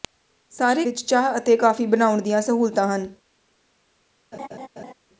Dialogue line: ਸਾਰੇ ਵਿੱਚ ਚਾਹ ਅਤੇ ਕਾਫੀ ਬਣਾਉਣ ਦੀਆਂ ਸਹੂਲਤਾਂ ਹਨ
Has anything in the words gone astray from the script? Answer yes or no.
no